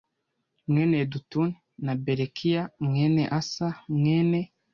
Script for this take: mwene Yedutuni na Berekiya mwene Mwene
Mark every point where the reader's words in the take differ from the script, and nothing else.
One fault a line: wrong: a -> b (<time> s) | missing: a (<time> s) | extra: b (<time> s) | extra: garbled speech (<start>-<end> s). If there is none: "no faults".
extra: Asa (3.4 s)